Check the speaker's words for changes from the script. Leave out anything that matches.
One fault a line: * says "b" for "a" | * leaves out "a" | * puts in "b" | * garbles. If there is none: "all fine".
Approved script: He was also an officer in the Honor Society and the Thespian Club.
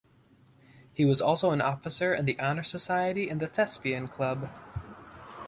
all fine